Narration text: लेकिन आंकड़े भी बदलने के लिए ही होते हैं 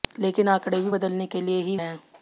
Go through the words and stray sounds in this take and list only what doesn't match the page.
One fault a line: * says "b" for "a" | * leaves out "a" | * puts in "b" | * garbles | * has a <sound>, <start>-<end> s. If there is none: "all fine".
* leaves out "होते"